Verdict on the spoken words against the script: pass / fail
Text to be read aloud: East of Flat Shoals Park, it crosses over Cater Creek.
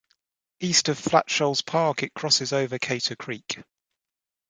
pass